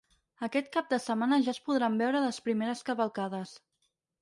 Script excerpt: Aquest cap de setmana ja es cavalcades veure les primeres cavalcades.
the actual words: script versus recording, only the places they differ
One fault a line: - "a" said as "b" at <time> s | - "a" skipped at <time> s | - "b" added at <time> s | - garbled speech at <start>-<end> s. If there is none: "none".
- "cavalcades" said as "podran" at 1.7 s